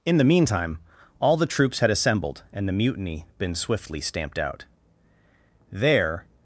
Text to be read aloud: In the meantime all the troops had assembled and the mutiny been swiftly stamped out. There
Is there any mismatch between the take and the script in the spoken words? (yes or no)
no